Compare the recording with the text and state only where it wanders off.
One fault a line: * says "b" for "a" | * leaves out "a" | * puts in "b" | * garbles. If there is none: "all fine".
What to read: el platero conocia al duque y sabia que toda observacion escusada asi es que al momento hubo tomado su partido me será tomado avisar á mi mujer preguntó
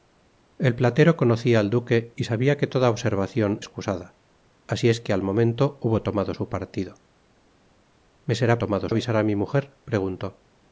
all fine